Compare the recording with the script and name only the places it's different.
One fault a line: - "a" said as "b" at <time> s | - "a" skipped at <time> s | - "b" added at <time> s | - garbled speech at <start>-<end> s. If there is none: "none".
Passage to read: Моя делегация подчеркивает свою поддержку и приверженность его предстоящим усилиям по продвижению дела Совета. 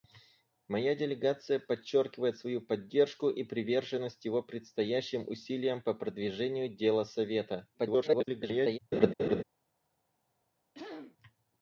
- garbled speech at 7.7-8.8 s